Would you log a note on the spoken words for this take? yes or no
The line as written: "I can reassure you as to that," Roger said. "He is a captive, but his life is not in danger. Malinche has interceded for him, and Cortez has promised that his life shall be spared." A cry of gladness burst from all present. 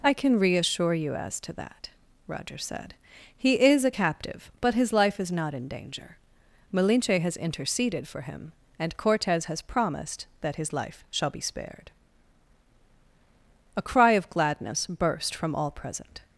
no